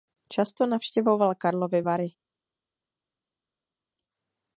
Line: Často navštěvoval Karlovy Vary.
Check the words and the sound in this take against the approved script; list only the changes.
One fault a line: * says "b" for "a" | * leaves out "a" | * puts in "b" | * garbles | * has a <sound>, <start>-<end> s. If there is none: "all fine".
all fine